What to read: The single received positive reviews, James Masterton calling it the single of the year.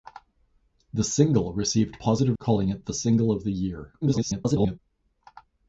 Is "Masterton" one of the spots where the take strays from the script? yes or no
yes